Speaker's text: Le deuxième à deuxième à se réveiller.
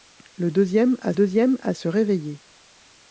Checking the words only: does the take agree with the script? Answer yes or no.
yes